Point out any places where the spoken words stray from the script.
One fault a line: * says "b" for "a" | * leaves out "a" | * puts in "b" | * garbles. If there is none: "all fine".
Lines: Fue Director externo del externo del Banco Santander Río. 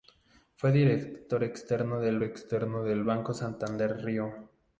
all fine